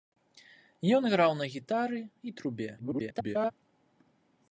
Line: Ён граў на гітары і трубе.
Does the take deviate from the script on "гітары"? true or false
false